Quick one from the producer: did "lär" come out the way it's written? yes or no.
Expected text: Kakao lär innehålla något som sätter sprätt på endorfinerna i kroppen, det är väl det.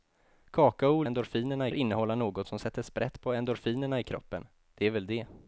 no